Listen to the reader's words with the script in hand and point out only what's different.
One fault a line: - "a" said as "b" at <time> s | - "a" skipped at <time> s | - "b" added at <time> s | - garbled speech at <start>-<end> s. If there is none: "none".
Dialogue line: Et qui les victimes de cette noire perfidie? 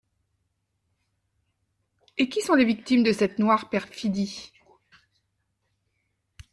- "sont" added at 2.4 s